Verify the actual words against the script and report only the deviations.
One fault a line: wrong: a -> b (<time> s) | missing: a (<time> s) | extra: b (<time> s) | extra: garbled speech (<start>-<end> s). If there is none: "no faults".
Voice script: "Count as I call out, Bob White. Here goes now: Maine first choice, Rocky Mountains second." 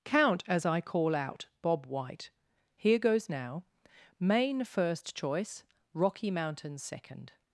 no faults